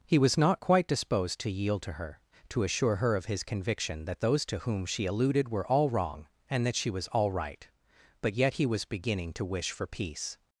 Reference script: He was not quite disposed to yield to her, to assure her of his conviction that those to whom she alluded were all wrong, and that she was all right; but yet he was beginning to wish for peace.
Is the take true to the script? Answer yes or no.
yes